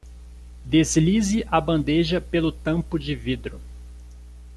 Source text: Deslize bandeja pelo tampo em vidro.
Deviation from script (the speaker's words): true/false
true